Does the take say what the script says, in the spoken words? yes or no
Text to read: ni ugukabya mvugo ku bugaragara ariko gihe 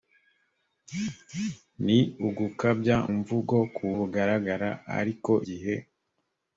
yes